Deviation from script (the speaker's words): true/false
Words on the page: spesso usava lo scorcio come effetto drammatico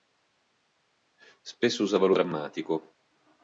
true